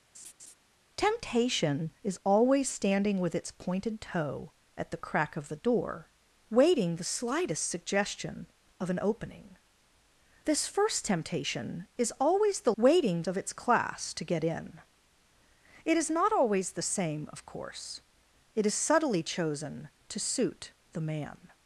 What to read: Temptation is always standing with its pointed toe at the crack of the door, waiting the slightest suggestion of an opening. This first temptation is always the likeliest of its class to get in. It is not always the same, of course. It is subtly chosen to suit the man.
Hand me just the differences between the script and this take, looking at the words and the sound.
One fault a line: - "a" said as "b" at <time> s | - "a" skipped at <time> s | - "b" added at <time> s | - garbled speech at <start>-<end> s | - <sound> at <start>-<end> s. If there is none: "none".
- laugh at 0.1-0.5 s
- "likeliest" said as "waiting" at 12.8 s